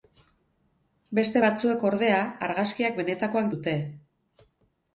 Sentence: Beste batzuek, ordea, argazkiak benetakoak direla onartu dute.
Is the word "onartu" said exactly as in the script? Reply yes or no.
no